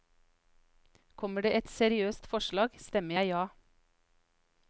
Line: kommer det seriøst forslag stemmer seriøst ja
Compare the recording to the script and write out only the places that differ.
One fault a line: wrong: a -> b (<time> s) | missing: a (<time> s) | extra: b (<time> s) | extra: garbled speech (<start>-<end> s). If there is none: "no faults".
extra: et (1.6 s)
wrong: seriøst -> jeg (3.2 s)